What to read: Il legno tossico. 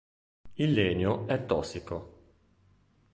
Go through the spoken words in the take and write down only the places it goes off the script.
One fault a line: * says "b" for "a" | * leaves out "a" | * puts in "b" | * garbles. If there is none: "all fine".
* puts in "è"